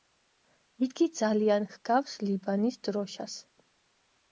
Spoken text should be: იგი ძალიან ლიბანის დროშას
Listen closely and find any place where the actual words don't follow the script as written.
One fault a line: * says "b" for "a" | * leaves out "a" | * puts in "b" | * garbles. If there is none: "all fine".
* puts in "ჰგავს"